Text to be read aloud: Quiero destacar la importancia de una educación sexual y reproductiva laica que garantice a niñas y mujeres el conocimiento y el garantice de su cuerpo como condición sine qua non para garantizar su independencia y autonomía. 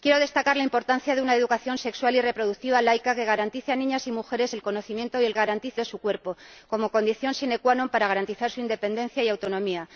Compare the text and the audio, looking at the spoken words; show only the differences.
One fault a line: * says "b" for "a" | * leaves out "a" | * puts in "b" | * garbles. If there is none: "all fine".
all fine